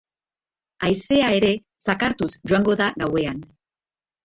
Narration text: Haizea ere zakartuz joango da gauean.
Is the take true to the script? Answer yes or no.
yes